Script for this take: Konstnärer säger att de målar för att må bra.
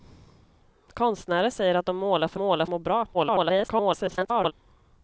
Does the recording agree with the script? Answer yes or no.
no